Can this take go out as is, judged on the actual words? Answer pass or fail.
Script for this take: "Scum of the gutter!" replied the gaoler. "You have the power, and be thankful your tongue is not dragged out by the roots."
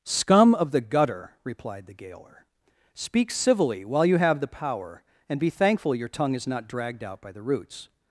fail